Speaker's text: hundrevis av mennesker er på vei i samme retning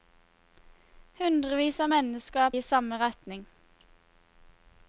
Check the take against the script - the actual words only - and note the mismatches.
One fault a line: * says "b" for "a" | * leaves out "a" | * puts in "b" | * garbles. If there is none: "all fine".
* leaves out "på vei"